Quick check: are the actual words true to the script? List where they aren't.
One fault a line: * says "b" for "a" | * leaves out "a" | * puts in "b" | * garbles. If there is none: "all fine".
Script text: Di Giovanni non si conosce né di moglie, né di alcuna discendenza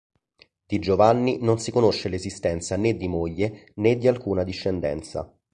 * puts in "l'esistenza"